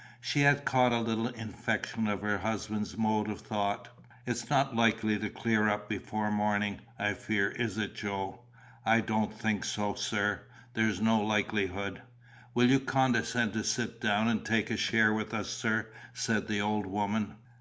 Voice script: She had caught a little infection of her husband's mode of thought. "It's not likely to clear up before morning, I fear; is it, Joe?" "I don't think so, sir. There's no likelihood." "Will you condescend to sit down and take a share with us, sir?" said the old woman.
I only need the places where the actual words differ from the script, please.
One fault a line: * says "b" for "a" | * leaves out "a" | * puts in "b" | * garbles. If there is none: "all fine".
all fine